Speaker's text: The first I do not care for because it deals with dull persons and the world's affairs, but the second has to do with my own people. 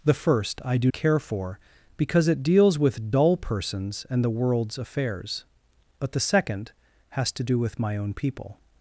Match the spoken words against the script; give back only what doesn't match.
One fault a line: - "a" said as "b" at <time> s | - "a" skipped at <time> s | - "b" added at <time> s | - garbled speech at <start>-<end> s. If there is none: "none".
- "not" skipped at 0.9 s